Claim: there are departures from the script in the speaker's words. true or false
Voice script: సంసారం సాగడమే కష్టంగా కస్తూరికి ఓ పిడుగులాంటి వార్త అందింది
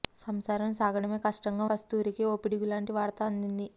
false